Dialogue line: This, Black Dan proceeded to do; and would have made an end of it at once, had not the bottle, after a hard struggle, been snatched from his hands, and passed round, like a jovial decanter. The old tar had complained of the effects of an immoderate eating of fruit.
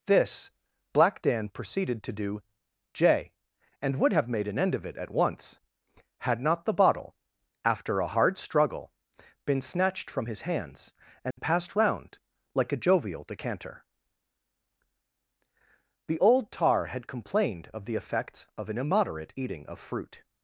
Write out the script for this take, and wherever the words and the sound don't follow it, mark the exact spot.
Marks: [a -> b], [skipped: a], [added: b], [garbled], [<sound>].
This, Black Dan proceeded to do; [added: j] and would have made an end of it at once, had not the bottle, after a hard struggle, been snatched from his hands, and [dropout] passed round, like a jovial decanter. The old tar had complained of the effects of an immoderate eating of fruit.